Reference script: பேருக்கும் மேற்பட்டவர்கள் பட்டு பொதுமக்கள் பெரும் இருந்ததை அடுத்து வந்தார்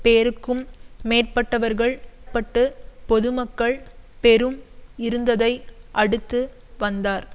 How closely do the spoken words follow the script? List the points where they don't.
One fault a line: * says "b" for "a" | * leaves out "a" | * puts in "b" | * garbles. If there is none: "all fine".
all fine